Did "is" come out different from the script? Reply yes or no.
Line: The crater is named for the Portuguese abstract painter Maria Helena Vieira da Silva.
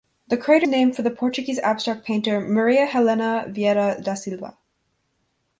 yes